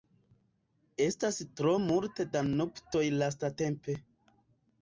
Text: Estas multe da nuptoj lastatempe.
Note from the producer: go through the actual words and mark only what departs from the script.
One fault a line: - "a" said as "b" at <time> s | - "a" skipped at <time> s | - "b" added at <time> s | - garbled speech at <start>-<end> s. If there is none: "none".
- "tro" added at 1.6 s